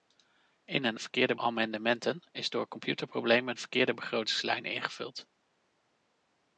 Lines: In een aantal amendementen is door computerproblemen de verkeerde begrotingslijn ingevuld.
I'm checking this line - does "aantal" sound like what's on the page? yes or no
no